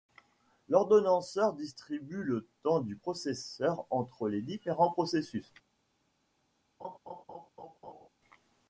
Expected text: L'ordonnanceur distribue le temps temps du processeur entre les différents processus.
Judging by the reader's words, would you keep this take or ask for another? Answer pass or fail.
fail